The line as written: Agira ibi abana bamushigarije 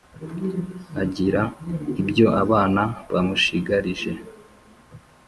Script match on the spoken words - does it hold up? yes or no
no